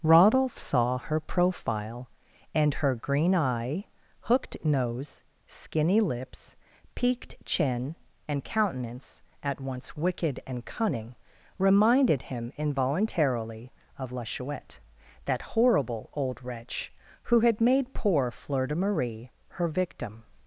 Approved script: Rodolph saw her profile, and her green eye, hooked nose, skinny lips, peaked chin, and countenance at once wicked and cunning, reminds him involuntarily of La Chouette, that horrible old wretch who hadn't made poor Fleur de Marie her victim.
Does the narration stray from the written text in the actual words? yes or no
yes